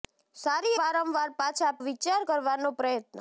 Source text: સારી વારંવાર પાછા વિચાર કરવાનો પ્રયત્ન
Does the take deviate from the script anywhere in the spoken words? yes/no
no